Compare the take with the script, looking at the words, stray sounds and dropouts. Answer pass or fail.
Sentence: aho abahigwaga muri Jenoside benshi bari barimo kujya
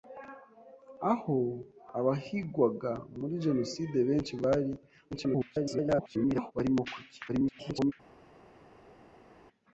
fail